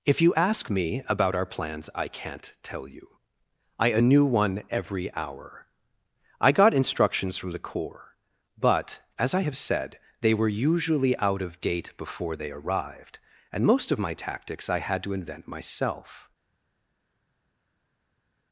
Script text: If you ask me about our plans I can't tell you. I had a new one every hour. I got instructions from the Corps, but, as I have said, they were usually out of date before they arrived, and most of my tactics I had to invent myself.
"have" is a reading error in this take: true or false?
false